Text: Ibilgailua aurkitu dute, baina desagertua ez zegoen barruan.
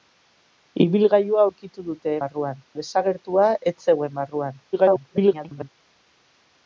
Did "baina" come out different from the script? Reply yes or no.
yes